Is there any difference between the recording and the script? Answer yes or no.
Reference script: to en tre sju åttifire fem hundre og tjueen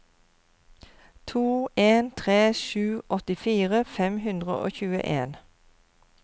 no